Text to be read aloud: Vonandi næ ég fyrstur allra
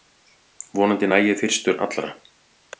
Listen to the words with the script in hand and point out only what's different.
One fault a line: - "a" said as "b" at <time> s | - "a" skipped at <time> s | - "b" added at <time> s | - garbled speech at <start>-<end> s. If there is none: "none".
none